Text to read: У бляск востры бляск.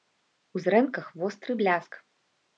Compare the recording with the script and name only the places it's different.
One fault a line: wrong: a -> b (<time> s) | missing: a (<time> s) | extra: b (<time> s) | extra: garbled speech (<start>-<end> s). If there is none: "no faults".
wrong: бляск -> зрэнках (0.7 s)